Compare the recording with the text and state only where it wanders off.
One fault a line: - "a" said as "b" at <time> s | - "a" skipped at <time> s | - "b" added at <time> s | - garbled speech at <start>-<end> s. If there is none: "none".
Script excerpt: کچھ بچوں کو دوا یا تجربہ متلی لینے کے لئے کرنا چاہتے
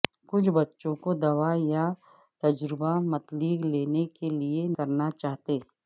none